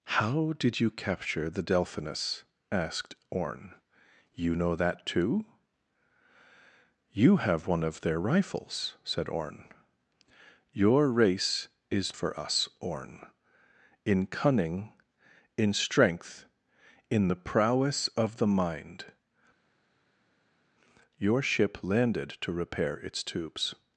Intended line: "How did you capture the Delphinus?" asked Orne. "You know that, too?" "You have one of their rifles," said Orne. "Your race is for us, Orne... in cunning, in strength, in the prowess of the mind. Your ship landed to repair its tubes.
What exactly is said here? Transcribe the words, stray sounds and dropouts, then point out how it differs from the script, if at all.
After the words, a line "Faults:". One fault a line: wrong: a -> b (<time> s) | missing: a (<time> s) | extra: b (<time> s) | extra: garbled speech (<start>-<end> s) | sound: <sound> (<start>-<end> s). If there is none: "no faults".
"How did you capture the Delphinus?" asked Orne. "You know that, too?" "You have one of their rifles," said Orne. "Your race is for us, Orne... in cunning, in strength, in the prowess of the mind. Your ship landed to repair its tubes.
Faults:
no faults